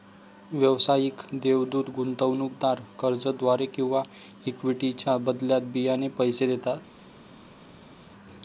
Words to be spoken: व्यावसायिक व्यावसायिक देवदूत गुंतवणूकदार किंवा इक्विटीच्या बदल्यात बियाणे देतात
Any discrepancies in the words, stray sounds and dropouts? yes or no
yes